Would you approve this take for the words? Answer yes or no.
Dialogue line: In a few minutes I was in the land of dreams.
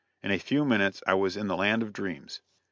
yes